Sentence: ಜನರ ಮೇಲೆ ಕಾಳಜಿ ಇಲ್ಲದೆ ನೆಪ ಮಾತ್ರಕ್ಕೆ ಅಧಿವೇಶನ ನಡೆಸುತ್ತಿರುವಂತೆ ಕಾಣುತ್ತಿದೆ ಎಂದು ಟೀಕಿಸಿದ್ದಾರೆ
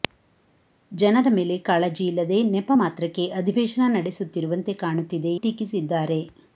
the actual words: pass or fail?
fail